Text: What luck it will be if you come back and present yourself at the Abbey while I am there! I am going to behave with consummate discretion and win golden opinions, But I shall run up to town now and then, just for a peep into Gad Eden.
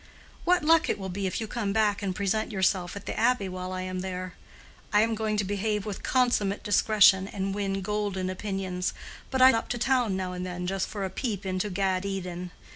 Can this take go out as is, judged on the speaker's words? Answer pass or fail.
fail